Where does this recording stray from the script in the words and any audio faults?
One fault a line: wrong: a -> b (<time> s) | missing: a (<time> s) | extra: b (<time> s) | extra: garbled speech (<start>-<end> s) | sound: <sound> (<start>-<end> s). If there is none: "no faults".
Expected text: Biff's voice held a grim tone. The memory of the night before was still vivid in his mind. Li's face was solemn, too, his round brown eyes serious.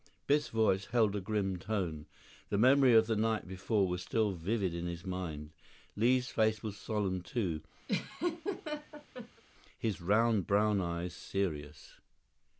sound: laugh (7.9-9.4 s)